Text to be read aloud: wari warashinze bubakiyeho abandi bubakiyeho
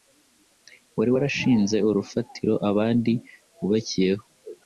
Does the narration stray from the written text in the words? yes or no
yes